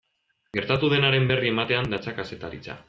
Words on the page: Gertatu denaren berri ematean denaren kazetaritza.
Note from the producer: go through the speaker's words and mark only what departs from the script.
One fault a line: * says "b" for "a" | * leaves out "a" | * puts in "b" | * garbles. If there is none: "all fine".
* says "datza" for "denaren"